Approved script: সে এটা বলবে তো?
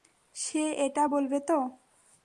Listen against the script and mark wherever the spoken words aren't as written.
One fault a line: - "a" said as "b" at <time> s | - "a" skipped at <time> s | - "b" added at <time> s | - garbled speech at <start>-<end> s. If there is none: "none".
none